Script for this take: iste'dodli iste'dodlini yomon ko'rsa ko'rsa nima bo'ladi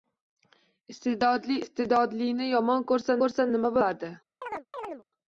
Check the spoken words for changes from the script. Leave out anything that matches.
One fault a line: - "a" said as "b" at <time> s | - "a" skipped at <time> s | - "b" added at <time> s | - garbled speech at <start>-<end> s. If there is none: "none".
none